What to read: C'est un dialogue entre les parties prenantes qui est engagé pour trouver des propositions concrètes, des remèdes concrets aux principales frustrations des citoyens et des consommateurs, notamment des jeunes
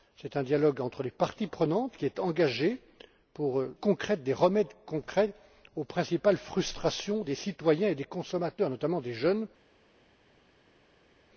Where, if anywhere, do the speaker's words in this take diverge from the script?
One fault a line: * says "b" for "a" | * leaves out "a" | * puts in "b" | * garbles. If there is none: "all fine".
* leaves out "trouver des propositions"